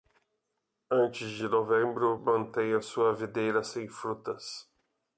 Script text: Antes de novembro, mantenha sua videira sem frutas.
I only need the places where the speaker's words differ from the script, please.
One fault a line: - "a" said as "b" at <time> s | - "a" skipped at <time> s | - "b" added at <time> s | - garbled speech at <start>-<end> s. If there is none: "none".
none